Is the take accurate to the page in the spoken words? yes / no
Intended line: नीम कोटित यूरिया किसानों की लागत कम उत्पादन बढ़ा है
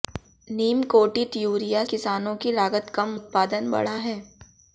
yes